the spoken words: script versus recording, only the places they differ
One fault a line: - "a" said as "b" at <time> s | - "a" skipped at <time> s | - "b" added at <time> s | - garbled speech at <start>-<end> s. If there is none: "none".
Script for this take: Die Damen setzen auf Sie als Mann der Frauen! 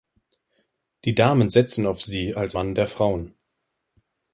none